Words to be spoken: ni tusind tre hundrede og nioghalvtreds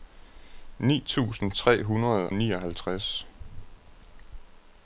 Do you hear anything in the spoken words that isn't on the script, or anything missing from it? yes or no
yes